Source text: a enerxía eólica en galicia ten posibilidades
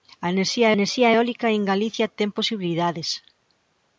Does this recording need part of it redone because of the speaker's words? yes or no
yes